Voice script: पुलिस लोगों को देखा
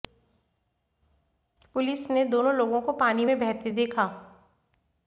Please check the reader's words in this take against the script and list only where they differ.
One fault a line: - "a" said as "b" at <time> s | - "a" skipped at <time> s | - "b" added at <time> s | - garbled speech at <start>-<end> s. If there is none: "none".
- "ने दोनों" added at 2.1 s
- "पानी में बहते" added at 2.9 s